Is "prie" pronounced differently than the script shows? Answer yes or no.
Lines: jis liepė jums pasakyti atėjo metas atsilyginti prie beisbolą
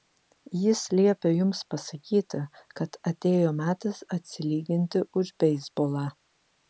yes